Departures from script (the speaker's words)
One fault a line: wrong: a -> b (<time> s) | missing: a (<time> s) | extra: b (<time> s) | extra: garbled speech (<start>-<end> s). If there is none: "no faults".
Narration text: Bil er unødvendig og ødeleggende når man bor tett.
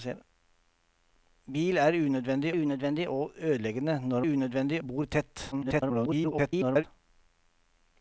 extra: unødvendig (2.5 s)
wrong: man -> unødvendig (4.2 s)
extra: garbled speech (5.5-6.8 s)